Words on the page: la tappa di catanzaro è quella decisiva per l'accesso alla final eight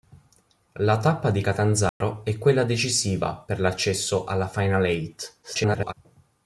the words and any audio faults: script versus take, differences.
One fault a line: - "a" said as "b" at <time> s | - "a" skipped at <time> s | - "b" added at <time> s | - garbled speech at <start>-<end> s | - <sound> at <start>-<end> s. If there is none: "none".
- dropout at 1.9-2.0 s
- garbled speech at 5.4-5.9 s